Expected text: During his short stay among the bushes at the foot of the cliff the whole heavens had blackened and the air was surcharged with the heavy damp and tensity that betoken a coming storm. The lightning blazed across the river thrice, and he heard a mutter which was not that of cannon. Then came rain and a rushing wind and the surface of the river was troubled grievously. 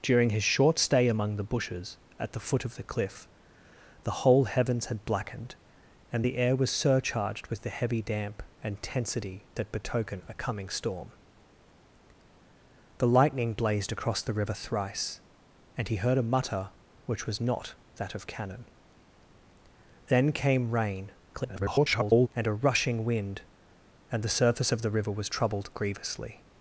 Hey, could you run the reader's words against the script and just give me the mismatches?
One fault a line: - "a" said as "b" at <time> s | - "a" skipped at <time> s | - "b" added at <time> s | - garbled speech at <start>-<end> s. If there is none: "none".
- garbled speech at 21.3-22.3 s